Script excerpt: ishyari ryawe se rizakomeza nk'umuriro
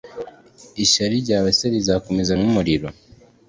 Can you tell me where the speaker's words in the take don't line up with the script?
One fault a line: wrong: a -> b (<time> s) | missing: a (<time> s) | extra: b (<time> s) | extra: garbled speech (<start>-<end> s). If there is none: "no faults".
no faults